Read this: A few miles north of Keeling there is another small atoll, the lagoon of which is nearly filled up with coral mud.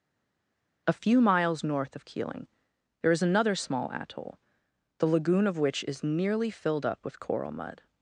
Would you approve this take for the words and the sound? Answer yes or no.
yes